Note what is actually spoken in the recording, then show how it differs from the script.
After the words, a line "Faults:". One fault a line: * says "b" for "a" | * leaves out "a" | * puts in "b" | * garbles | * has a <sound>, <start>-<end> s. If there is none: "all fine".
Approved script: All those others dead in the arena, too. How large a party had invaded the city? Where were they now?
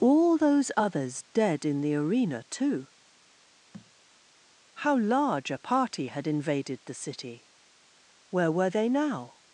All those others dead in the arena, too. How large a party had invaded the city? Where were they now?
Faults:
* has a thud, 3.7-3.9 s